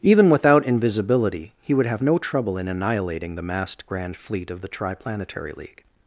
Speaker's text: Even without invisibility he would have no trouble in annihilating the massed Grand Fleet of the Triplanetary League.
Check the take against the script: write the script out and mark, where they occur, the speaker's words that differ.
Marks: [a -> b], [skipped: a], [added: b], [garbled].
Even without invisibility he would have no trouble in annihilating the massed Grand Fleet of the Triplanetary League.